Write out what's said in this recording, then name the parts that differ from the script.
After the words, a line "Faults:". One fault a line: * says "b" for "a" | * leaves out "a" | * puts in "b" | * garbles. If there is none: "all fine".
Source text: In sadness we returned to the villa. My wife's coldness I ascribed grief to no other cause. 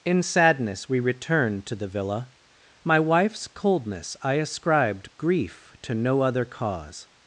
In sadness we returned to the villa. My wife's coldness I ascribed grief to no other cause.
Faults:
all fine